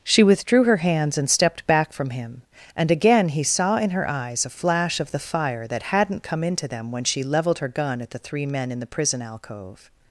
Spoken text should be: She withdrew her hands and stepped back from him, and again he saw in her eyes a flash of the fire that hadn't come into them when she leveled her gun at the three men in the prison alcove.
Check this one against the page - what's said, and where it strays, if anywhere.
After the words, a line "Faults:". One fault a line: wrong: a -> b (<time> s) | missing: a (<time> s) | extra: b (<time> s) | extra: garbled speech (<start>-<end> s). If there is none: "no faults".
She withdrew her hands and stepped back from him, and again he saw in her eyes a flash of the fire that hadn't come into them when she leveled her gun at the three men in the prison alcove.
Faults:
no faults